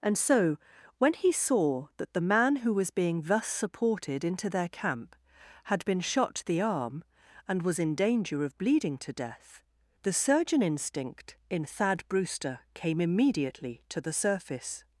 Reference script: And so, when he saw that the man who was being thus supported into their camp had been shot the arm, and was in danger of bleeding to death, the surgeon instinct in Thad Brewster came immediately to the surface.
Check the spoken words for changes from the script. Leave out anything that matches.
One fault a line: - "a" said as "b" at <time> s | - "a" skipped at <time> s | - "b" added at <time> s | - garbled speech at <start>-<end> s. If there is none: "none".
none